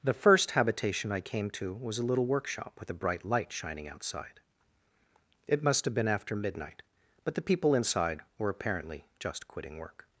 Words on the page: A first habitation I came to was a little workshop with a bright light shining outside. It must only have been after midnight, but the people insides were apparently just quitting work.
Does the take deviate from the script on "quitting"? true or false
false